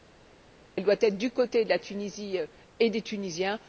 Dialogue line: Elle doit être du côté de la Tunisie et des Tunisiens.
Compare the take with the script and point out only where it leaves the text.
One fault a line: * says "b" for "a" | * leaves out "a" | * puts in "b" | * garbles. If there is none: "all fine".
all fine